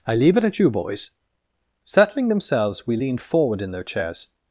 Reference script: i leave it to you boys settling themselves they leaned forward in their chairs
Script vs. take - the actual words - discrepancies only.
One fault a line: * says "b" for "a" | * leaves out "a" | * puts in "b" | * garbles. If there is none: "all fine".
* says "at" for "to"
* says "we" for "they"